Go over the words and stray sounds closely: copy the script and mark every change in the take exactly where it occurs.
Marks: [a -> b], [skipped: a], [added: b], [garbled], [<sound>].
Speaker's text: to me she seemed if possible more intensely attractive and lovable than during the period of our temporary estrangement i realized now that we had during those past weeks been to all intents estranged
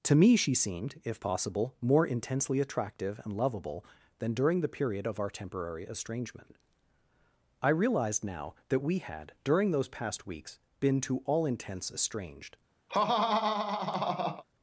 to me she seemed if possible more intensely attractive and lovable than during the period of our temporary estrangement i realized now that we had during those past weeks been to all intents estranged [laugh]